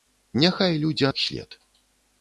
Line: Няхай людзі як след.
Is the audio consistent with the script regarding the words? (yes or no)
yes